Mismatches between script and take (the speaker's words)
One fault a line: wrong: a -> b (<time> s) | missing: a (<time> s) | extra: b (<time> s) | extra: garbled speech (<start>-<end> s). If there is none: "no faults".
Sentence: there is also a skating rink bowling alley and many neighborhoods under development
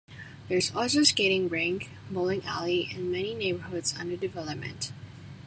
no faults